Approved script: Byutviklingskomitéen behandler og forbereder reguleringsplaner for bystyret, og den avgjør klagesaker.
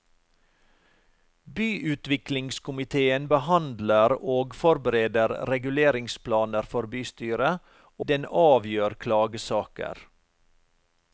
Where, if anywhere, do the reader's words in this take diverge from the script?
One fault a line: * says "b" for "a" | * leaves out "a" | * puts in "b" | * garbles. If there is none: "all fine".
* leaves out "og"